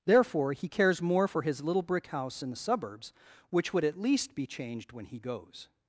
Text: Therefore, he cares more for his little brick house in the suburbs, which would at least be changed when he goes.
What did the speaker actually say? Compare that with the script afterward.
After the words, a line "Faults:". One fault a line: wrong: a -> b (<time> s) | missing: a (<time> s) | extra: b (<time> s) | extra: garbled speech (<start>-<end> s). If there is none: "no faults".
Therefore, he cares more for his little brick house in the suburbs, which would at least be changed when he goes.
Faults:
no faults